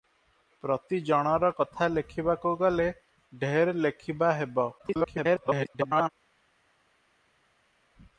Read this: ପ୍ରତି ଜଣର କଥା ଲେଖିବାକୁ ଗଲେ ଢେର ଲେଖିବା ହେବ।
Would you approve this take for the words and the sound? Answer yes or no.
no